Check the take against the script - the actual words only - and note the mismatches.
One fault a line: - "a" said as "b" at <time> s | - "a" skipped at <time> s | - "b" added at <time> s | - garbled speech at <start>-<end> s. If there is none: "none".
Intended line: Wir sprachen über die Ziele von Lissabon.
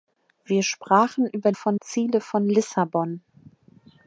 - "die" said as "von" at 1.5 s